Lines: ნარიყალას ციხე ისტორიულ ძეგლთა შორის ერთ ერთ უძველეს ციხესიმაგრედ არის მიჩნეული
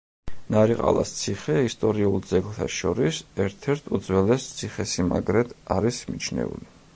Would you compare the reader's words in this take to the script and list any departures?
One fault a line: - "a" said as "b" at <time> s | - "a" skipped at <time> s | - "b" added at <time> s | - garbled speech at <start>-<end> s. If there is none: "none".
none